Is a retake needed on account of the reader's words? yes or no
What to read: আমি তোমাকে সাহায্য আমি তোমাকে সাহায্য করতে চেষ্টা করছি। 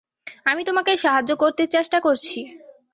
yes